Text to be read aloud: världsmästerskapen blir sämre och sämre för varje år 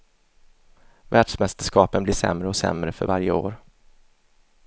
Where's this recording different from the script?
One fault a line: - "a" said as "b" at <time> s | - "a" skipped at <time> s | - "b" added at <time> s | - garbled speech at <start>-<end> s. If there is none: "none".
none